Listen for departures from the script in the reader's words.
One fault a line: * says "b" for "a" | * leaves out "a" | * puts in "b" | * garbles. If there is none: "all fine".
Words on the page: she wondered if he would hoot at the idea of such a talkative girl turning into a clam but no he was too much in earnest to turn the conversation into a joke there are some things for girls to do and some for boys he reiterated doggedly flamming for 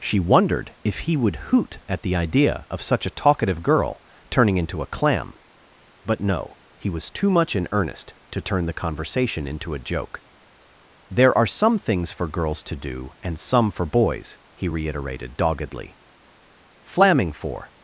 all fine